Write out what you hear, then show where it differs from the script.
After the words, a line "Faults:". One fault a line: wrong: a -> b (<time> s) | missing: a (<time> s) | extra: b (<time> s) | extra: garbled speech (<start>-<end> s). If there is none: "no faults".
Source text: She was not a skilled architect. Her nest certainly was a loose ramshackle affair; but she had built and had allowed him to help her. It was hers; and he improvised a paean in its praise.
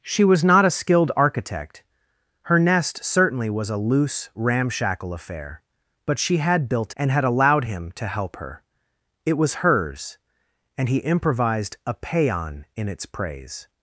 She was not a skilled architect. Her nest certainly was a loose ramshackle affair; but she had built and had allowed him to help her. It was hers; and he improvised a paean in its praise.
Faults:
no faults